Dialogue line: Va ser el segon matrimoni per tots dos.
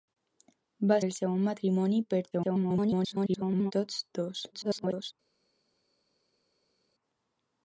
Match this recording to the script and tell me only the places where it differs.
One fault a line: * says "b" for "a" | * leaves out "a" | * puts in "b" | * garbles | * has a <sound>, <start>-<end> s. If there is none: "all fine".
* leaves out "ser"
* garbles
* garbles